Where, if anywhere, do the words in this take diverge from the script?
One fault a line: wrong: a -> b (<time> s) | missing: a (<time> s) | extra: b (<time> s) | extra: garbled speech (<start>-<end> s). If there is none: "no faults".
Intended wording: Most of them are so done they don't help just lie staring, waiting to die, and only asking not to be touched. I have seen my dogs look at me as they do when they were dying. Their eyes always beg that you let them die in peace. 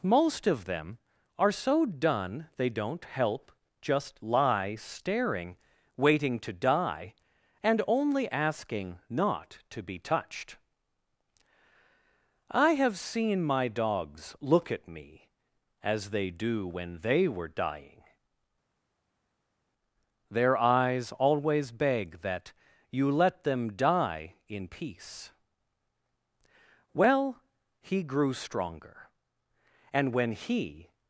extra: Well he grew stronger and when he (26.9 s)